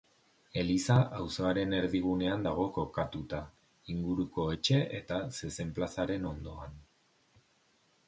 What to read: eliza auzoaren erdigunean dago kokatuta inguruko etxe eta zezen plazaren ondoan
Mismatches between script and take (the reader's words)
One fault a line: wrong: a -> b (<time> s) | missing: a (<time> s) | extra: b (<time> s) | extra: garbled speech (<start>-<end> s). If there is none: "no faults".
no faults